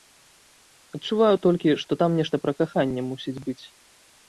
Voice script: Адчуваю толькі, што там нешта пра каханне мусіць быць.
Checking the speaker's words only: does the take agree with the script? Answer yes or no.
yes